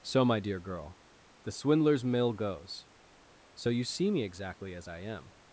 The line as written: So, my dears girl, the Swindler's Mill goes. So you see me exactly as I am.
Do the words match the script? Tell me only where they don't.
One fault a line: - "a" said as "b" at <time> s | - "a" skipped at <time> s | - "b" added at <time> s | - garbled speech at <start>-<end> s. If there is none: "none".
- "dears" said as "dear" at 0.4 s